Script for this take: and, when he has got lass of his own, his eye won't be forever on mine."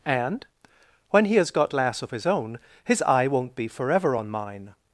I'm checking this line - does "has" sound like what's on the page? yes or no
yes